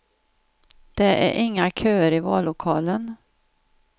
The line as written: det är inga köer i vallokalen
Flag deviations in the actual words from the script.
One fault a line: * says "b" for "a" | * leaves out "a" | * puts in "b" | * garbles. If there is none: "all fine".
all fine